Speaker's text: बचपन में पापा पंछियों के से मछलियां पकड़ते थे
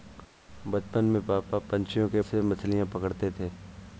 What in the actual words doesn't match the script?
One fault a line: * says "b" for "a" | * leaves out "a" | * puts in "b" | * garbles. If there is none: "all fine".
all fine